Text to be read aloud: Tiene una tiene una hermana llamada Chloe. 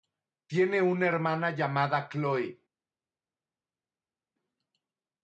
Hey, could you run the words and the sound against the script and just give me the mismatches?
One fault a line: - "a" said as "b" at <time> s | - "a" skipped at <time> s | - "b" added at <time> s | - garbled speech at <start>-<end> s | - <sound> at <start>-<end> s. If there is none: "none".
- "tiene una" skipped at 1.1 s